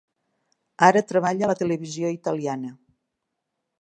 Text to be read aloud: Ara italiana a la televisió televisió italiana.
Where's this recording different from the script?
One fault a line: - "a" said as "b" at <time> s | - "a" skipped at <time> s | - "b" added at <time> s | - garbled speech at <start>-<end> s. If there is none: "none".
- "italiana" said as "treballa" at 1.1 s
- "televisió" skipped at 2.1 s